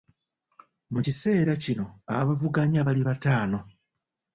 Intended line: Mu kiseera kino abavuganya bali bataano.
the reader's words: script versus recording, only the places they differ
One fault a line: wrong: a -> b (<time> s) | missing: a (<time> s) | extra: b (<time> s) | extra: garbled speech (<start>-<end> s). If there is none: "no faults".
no faults